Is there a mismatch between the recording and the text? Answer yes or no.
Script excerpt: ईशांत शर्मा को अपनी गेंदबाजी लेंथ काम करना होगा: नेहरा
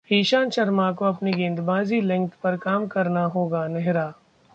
yes